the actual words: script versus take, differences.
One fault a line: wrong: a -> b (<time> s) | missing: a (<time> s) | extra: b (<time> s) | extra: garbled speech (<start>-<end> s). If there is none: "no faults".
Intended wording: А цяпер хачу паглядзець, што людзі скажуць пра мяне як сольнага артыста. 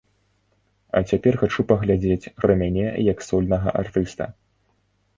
missing: што людзі скажуць (2.3 s)